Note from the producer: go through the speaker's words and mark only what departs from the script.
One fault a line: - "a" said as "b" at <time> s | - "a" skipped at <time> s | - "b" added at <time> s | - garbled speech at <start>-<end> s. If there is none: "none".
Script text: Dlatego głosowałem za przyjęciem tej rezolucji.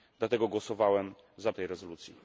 - "przyjęciem" skipped at 1.5 s